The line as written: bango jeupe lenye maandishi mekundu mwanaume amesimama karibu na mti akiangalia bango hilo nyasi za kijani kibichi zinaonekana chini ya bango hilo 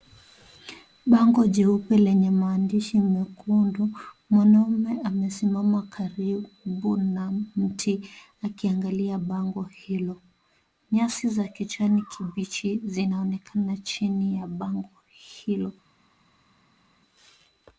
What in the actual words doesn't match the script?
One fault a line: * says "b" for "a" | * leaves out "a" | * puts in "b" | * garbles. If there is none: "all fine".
all fine